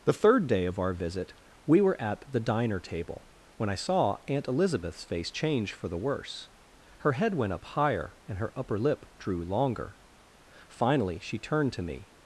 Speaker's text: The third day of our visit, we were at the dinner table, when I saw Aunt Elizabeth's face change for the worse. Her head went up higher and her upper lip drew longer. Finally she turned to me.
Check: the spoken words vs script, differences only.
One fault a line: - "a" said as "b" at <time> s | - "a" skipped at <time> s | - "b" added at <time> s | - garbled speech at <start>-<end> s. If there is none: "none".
- "dinner" said as "diner" at 2.4 s